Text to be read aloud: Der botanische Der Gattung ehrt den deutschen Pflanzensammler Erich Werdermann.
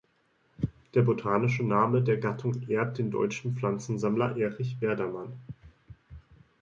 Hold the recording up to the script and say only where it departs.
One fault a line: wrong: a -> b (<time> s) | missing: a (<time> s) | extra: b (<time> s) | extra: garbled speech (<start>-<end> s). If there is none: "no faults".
extra: Name (1.6 s)